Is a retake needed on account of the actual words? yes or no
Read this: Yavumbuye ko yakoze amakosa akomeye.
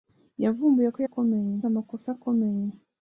yes